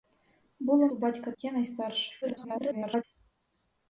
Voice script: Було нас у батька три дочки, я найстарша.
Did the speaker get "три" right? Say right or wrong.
wrong